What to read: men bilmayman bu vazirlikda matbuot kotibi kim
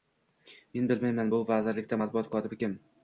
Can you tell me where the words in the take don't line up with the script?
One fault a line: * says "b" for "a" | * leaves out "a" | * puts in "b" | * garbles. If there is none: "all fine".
all fine